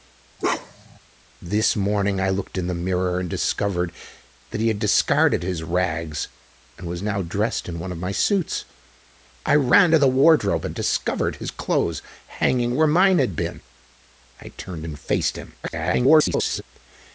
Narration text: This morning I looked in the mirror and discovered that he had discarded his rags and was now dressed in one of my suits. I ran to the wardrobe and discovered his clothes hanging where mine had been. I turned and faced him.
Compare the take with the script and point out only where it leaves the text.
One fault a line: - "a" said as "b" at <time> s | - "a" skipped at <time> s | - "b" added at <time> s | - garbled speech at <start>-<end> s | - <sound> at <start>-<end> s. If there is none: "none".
- bark at 0.4-1.0 s
- garbled speech at 15.6-16.6 s